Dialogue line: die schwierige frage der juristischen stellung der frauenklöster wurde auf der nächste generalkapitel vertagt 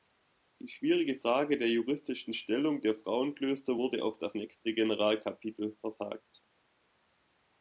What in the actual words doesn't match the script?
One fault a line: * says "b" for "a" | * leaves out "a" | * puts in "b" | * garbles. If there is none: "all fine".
* says "das" for "der"